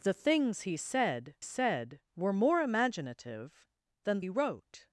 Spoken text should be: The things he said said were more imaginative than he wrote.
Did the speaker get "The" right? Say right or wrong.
right